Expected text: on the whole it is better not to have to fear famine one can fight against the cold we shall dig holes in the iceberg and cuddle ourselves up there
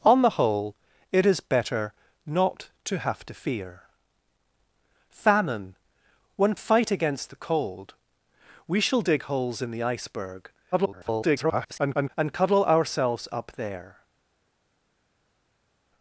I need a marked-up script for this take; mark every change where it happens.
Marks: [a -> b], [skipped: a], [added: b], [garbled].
on the whole it is better not to have to fear famine one [skipped: can] fight against the cold we shall dig holes in the iceberg [garbled] and cuddle ourselves up there